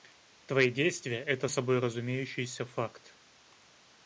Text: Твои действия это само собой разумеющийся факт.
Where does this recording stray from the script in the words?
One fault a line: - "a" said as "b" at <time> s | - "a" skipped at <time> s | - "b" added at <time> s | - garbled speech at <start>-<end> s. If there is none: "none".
- "само" skipped at 1.5 s